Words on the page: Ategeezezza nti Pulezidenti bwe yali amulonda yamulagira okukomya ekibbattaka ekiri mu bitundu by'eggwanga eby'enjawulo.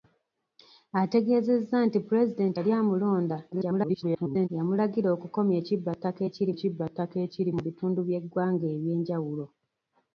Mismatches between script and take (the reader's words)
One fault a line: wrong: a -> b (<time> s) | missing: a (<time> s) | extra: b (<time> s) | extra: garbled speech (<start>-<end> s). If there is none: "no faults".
missing: bwe (2.6 s)
extra: garbled speech (3.5-4.5 s)
extra: ekibbattaka ekiri (6.5 s)